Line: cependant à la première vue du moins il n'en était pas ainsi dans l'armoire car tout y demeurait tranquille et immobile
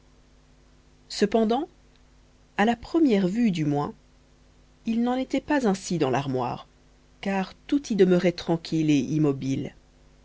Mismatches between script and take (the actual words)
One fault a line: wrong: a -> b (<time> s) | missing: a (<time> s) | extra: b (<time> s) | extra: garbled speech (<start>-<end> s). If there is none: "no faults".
no faults